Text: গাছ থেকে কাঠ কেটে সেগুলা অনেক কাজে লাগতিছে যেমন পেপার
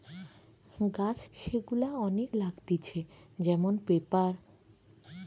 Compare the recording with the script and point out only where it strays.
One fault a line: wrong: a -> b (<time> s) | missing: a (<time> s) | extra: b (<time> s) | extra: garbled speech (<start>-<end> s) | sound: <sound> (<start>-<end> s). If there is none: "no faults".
missing: থেকে কাঠ কেটে (1.2 s)
missing: কাজে (2.3 s)